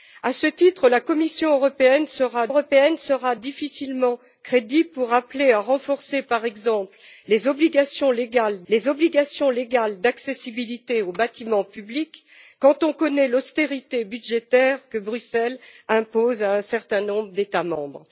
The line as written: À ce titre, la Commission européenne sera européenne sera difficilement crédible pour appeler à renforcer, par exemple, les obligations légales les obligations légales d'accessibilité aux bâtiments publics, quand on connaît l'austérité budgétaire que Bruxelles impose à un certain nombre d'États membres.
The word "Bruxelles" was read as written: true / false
true